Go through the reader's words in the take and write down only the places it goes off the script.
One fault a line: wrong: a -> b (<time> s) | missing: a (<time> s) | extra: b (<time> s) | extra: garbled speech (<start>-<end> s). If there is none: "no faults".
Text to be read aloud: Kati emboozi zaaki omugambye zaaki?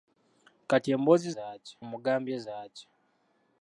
no faults